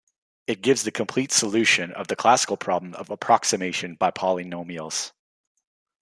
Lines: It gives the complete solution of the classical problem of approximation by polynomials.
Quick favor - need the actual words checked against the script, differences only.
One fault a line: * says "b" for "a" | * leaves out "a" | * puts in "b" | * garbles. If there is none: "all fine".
all fine